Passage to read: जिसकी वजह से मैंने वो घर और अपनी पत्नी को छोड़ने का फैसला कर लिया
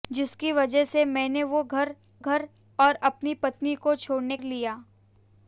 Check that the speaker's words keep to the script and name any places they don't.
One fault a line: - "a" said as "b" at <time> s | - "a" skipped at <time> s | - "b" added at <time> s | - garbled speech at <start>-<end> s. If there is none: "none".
- "घर" added at 2.2 s
- "का फैसला कर" skipped at 4.4 s